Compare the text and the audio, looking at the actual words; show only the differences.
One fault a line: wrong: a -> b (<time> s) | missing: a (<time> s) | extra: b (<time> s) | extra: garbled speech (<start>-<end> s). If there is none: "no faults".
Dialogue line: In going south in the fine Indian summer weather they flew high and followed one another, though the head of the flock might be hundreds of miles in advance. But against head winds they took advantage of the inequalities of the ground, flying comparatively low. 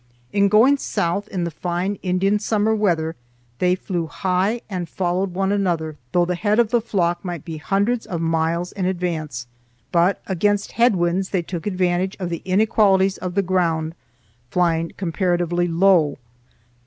no faults